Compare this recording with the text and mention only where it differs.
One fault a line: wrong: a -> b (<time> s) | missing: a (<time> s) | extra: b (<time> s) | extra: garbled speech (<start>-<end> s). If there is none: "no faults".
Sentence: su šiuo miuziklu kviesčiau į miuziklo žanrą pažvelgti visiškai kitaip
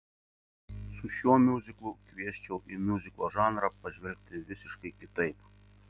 no faults